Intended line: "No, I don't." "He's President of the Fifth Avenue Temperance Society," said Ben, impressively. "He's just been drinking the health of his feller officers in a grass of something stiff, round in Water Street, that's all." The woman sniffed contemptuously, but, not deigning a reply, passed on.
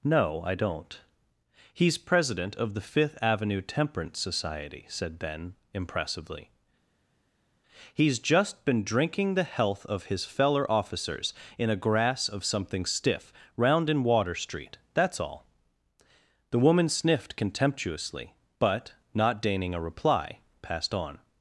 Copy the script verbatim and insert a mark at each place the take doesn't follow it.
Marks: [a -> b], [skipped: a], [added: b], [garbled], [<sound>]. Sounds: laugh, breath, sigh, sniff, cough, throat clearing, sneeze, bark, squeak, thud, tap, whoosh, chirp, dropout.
"No, I don't." "He's President of the Fifth Avenue Temperance Society," said Ben, impressively. "He's just been drinking the health of his feller officers in a grass of something stiff, round in Water Street, that's all." The woman sniffed contemptuously, but, not deigning a reply, passed on.